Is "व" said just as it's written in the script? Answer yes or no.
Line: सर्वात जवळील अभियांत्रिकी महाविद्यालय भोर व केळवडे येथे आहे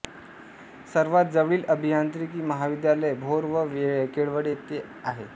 yes